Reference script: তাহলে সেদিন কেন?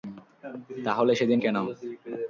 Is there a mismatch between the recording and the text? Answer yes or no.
no